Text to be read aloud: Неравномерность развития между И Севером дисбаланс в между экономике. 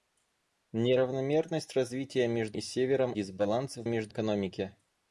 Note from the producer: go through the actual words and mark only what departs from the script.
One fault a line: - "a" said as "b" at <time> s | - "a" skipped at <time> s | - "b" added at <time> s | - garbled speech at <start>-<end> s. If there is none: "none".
none